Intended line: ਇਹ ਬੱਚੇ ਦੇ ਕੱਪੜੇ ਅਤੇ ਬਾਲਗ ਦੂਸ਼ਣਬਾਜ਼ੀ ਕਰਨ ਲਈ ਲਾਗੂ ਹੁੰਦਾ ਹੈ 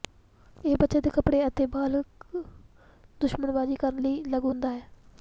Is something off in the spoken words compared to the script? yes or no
no